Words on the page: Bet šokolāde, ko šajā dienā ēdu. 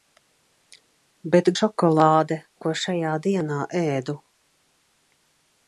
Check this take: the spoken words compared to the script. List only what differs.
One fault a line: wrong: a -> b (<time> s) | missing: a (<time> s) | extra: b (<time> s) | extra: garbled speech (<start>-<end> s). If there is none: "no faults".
no faults